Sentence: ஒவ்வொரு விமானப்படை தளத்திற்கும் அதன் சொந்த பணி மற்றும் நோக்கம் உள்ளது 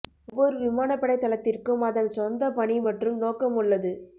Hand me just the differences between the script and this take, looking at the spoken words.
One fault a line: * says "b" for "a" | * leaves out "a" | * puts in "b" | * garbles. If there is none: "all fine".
all fine